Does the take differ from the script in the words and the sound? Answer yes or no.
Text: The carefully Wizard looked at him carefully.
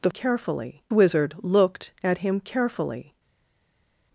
no